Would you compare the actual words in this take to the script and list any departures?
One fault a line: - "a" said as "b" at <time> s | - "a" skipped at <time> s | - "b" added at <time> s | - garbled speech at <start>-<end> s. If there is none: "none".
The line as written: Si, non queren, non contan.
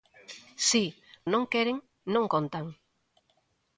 none